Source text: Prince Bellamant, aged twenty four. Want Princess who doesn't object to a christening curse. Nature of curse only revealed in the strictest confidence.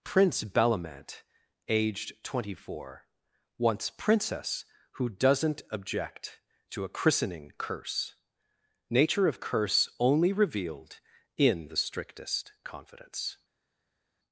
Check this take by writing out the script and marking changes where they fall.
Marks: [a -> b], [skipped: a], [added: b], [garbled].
Prince Bellamant, aged twenty four. [Want -> Wants] Princess who doesn't object to a christening curse. Nature of curse only revealed in the strictest confidence.